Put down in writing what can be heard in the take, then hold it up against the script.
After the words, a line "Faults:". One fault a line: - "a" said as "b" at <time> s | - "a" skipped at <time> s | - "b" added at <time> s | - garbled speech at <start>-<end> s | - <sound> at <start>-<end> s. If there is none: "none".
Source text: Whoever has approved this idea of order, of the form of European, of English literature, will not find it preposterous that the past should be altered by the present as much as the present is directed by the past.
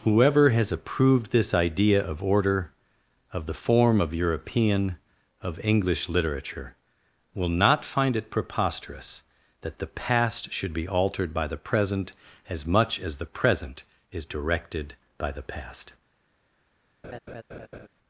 Whoever has approved this idea of order, of the form of European, of English literature, will not find it preposterous that the past should be altered by the present as much as the present is directed by the past.
Faults:
- laugh at 17.0-17.9 s